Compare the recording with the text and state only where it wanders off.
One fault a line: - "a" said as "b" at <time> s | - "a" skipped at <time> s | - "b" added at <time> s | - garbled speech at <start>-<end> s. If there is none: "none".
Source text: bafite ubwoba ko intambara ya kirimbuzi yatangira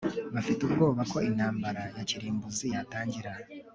none